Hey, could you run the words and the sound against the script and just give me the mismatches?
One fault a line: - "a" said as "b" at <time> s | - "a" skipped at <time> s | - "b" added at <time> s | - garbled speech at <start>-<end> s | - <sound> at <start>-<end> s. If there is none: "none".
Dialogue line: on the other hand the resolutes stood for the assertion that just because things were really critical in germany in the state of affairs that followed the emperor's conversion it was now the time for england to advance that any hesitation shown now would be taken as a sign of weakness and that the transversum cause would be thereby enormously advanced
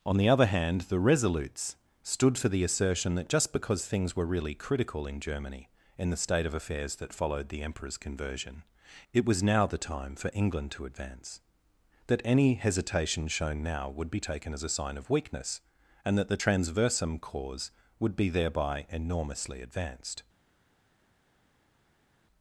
none